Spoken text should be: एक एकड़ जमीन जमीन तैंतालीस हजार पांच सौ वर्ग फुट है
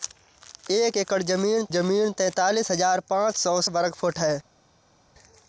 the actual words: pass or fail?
pass